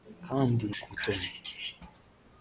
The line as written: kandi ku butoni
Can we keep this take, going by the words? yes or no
yes